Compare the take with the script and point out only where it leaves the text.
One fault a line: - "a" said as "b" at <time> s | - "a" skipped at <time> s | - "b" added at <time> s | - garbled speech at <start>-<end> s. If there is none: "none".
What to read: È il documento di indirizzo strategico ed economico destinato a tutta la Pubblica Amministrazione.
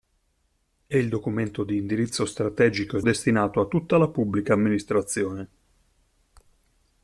- "economico" skipped at 3.0 s